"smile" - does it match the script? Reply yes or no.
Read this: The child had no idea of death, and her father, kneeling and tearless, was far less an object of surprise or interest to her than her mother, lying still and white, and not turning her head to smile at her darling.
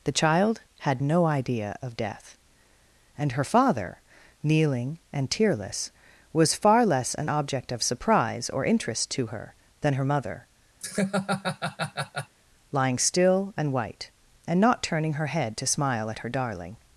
yes